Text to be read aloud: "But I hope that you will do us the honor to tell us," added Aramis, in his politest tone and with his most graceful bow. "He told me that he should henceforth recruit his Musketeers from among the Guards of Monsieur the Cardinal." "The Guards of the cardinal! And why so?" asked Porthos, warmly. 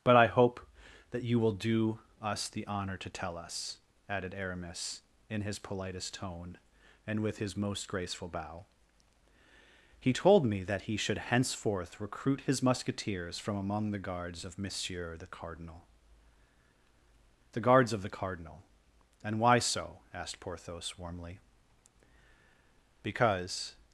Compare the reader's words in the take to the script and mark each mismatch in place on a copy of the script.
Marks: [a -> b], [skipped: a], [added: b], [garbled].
"But I hope that you will do us the honor to tell us," added Aramis, in his politest tone and with his most graceful bow. "He told me that he should henceforth recruit his Musketeers from among the Guards of Monsieur the Cardinal." "The Guards of the cardinal! And why so?" asked Porthos, warmly. [added: Because]